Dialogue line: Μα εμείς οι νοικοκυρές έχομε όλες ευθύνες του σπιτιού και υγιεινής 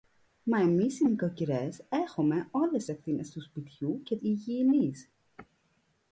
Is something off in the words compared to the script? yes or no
no